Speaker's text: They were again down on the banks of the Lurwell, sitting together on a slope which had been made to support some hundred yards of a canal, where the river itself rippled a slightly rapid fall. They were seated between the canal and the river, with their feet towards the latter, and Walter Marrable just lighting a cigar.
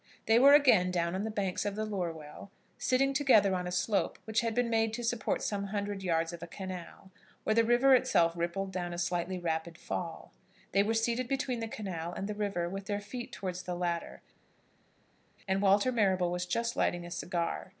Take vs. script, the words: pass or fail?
fail